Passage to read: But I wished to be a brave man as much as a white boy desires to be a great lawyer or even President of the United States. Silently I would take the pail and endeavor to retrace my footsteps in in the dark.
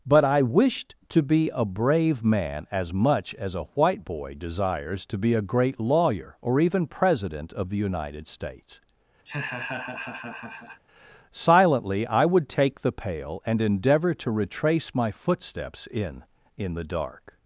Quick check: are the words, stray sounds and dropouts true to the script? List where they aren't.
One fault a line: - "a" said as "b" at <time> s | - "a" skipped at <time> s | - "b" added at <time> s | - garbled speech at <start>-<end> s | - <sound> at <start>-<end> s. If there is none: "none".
- laugh at 9.3-10.8 s